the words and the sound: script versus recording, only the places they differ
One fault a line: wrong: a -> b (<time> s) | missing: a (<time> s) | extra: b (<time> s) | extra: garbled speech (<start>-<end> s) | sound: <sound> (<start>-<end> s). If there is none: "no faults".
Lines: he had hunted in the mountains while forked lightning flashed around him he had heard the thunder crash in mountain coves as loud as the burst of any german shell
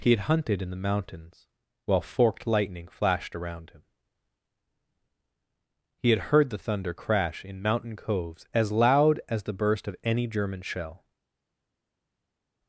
no faults